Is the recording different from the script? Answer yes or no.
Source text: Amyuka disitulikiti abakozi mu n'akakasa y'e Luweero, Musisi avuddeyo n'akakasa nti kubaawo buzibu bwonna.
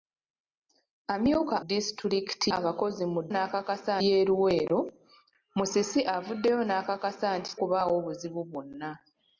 no